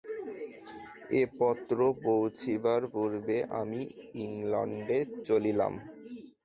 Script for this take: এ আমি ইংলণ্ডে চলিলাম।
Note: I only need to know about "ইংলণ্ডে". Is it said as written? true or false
true